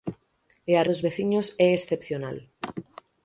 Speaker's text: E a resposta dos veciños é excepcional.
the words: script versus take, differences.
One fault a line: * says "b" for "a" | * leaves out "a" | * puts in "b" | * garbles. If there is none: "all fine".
* leaves out "resposta"